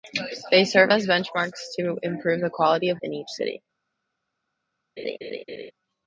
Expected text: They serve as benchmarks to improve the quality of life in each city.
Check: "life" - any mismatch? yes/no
yes